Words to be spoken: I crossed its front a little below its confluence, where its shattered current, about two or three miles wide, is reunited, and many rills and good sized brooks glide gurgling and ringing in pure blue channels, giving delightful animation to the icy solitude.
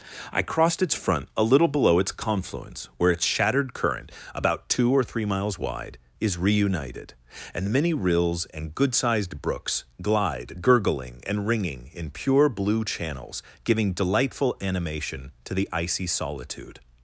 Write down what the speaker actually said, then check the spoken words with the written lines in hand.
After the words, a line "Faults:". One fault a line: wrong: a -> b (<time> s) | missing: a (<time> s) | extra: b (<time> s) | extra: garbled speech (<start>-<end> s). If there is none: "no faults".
I crossed its front a little below its confluence, where its shattered current, about two or three miles wide, is reunited, and many rills and good sized brooks glide gurgling and ringing in pure blue channels, giving delightful animation to the icy solitude.
Faults:
no faults